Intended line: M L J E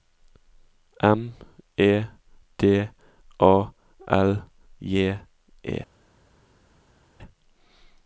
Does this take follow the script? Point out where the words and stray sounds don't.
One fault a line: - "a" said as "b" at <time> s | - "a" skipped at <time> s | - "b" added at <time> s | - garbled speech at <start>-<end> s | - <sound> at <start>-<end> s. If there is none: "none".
- "E D A" added at 1.8 s